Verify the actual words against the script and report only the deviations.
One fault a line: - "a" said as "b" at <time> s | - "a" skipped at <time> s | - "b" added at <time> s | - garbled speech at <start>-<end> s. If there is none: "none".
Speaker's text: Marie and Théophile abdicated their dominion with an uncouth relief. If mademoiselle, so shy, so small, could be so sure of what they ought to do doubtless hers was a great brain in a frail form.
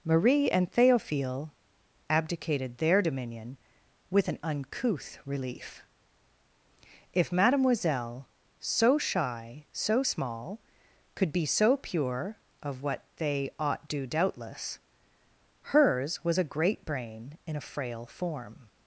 - "sure" said as "pure" at 11.8 s
- "to" skipped at 13.9 s